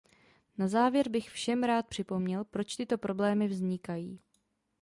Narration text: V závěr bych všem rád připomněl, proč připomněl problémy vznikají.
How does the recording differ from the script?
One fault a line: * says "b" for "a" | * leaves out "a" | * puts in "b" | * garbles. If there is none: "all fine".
* says "Na" for "V"
* says "tyto" for "připomněl"